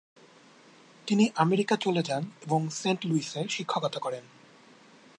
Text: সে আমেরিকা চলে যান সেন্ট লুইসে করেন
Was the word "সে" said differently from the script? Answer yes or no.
yes